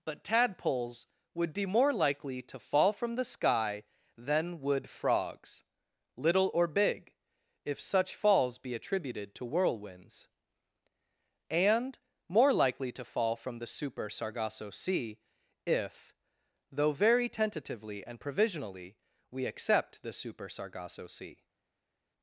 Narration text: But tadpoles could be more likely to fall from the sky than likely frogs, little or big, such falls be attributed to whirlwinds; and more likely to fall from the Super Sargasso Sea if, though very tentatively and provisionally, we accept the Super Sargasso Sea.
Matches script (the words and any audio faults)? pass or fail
fail